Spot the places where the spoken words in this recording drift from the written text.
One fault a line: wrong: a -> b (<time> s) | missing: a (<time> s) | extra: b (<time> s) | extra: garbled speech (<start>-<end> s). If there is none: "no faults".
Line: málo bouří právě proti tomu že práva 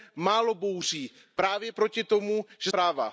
no faults